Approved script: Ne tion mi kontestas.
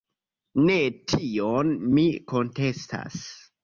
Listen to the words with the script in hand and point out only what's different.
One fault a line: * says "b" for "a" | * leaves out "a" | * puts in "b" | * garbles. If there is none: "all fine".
all fine